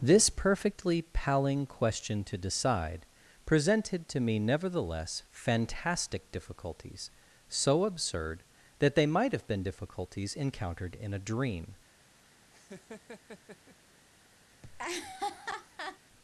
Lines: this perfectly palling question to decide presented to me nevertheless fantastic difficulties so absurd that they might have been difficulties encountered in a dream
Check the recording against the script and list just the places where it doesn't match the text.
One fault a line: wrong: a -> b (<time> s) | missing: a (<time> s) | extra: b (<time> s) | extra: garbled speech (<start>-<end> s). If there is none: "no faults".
no faults